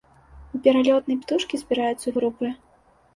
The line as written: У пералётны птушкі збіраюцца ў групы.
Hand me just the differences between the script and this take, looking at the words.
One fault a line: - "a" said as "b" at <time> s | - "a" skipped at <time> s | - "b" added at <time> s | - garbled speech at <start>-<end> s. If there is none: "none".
none